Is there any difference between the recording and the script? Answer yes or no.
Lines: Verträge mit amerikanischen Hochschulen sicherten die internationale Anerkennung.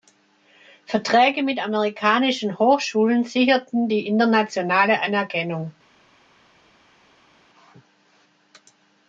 no